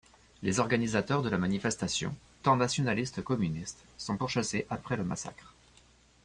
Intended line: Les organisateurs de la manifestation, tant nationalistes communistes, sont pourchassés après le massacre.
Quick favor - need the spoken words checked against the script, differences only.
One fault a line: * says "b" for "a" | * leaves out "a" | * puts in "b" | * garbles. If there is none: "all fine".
all fine